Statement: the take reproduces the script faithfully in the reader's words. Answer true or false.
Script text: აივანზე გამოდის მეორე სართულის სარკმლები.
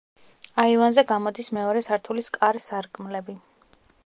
false